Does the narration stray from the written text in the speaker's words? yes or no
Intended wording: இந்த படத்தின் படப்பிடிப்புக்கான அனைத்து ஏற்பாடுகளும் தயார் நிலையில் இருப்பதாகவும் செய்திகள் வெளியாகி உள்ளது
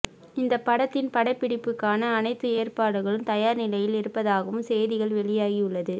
no